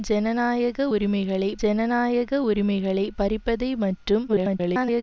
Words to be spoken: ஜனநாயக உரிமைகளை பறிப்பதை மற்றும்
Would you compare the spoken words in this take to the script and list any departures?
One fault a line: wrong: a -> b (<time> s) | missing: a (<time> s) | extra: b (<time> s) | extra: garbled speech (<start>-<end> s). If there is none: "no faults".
extra: ஜனநாயக உரிமைகளை (1.6 s)
extra: garbled speech (4.3-5.0 s)